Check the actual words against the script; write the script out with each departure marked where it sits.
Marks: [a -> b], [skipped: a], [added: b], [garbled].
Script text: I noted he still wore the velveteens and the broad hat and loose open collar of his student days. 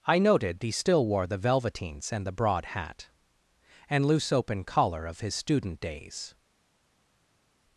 I noted he still wore the velveteens and the broad hat and loose open collar of his student days.